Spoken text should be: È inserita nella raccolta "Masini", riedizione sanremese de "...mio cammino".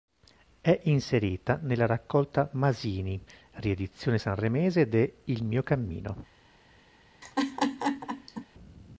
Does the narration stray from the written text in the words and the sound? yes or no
yes